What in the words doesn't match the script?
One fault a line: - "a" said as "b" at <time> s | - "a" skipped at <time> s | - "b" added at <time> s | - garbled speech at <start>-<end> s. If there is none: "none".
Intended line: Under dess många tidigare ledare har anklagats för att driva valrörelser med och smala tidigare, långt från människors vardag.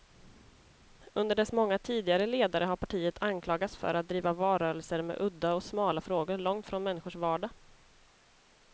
- "partiet" added at 2.8 s
- "udda" added at 5.2 s
- "tidigare" said as "frågor" at 6.0 s